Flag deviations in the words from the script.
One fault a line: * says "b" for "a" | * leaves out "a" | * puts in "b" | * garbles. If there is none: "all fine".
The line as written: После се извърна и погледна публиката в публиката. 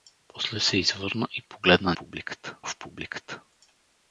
all fine